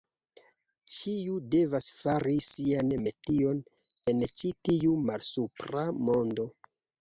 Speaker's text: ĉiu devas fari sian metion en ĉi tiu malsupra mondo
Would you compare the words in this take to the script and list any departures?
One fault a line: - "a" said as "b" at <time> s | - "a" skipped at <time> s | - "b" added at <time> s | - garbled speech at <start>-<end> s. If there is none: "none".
none